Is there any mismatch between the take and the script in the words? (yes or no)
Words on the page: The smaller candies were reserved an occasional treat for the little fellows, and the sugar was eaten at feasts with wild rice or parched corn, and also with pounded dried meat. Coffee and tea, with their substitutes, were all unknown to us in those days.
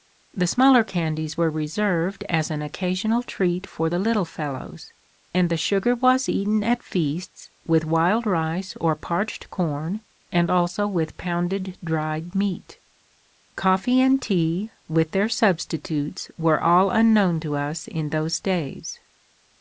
yes